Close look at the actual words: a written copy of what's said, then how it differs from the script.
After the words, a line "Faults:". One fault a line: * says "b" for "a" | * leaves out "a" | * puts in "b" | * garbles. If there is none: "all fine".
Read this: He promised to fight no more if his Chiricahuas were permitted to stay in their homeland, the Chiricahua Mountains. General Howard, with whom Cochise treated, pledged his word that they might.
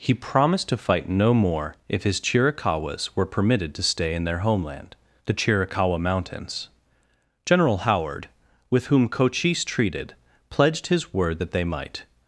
He promised to fight no more if his Chiricahuas were permitted to stay in their homeland, the Chiricahua Mountains. General Howard, with whom Cochise treated, pledged his word that they might.
Faults:
all fine